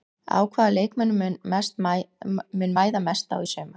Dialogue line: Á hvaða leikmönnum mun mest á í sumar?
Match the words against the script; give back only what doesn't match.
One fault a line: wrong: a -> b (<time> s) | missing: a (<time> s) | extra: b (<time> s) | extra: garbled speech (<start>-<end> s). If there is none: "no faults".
extra: mæða (2.8 s)